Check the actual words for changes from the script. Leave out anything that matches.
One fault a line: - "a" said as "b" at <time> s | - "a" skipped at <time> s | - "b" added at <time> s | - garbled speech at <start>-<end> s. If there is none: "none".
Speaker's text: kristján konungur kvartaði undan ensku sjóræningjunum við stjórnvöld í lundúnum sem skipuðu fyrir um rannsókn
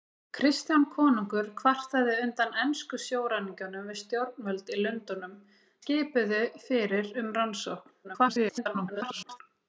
- "sem" skipped at 5.4 s
- garbled speech at 8.0-9.4 s